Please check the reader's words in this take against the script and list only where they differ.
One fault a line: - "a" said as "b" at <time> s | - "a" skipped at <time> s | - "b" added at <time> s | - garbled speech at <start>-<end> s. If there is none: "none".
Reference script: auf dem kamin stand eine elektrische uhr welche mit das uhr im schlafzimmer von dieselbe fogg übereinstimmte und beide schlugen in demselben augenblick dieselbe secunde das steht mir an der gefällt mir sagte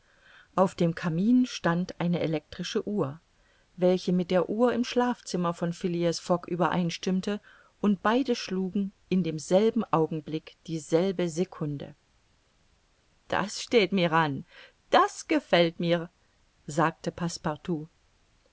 - "das" said as "der" at 4.3 s
- "dieselbe" said as "phileas" at 5.7 s
- "der" said as "das" at 14.9 s